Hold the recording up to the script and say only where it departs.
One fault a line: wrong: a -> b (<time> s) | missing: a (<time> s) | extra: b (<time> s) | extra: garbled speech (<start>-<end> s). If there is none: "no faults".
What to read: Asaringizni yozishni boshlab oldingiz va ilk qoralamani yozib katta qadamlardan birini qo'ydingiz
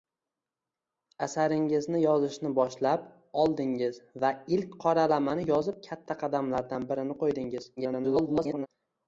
extra: garbled speech (7.8-8.7 s)